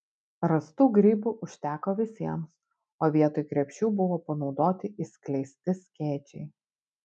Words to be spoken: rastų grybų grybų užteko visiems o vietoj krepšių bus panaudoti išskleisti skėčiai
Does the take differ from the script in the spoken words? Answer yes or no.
yes